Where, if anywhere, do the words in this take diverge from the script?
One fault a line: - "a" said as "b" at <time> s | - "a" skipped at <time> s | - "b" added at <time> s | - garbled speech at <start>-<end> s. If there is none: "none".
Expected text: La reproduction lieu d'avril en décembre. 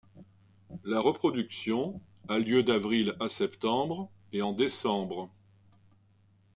- "a" added at 2.3 s
- "à septembre et" added at 3.2 s